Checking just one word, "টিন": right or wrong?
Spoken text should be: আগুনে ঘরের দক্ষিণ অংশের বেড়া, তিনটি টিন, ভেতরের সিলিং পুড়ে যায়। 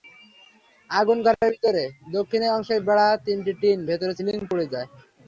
right